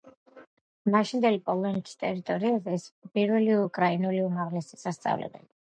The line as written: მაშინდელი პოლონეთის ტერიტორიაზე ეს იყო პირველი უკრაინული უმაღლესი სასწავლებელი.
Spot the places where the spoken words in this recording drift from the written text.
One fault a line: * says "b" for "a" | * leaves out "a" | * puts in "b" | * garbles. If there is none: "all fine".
all fine